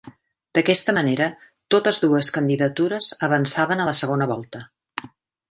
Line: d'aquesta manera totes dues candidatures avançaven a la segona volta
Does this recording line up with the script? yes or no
yes